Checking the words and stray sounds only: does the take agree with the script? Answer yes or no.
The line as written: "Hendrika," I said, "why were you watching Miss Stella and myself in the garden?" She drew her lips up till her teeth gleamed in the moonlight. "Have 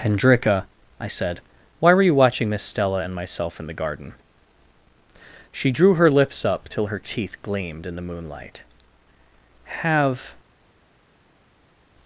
yes